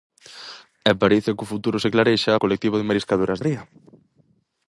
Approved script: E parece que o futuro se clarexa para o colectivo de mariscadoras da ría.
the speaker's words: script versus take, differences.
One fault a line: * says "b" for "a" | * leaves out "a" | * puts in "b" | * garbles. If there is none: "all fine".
* leaves out "para"
* leaves out "da"